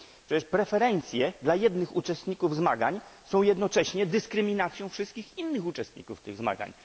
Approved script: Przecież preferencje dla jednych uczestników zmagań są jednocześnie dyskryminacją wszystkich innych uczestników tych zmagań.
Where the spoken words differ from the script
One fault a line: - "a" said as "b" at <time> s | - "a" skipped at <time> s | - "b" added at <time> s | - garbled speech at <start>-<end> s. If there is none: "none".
none